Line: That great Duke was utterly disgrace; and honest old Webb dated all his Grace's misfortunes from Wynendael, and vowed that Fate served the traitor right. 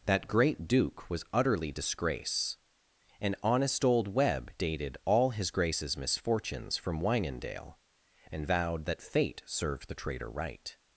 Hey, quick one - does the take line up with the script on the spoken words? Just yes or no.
yes